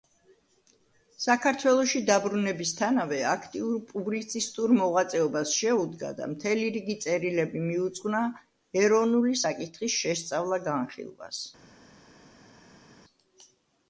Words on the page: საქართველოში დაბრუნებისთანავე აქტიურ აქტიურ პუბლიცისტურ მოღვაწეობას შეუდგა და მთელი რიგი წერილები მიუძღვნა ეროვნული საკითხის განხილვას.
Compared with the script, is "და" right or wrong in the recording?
right